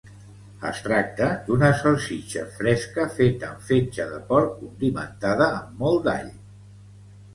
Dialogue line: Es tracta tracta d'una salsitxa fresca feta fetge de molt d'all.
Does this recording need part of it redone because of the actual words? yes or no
yes